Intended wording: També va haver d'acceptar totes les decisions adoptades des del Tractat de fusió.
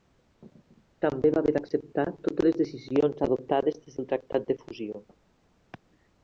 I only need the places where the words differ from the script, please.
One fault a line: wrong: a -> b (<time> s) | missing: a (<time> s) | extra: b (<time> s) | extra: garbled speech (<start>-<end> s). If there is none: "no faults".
no faults